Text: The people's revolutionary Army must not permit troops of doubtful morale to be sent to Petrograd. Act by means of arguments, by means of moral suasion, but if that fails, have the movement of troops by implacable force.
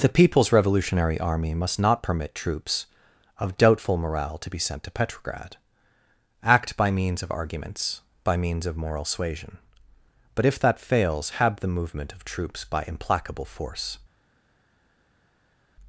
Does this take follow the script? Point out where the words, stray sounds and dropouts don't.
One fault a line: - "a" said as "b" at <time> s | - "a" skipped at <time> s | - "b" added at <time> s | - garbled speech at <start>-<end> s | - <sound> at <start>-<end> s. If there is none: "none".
none